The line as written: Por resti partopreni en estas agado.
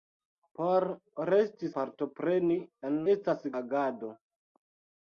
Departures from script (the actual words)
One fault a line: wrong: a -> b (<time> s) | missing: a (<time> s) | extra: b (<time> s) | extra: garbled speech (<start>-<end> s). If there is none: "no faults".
no faults